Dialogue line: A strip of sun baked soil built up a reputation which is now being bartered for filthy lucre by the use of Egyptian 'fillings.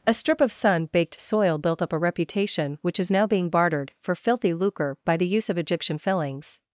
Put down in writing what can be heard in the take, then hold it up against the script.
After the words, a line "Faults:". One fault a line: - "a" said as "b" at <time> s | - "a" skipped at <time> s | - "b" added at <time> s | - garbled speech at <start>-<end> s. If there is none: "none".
A strip of sun baked soil built up a reputation which is now being bartered for filthy lucre by the use of Egyptian 'fillings.
Faults:
none